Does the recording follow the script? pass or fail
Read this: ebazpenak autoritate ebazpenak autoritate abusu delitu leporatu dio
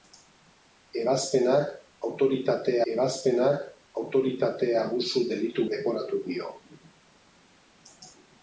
pass